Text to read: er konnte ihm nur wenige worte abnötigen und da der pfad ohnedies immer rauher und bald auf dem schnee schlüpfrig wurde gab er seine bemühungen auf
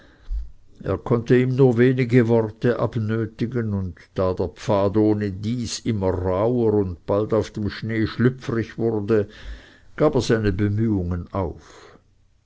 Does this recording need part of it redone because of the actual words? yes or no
no